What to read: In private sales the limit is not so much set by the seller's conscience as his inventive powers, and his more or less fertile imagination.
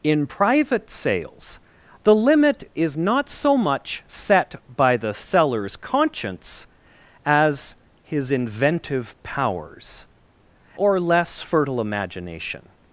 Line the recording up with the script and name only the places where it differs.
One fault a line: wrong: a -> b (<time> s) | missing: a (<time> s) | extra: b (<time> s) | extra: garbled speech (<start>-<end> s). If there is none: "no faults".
missing: and his more (10.1 s)